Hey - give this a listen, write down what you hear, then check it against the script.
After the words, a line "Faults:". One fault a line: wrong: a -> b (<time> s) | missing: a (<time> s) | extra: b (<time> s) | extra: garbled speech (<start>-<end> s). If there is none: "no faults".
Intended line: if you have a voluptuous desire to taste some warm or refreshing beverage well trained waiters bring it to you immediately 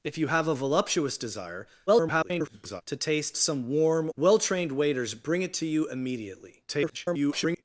if you have a voluptuous desire [garbled] to taste some warm well trained waiters bring it to you immediately [garbled]
Faults:
extra: garbled speech (1.9-2.8 s)
missing: or refreshing beverage (4.1 s)
extra: garbled speech (6.7-7.6 s)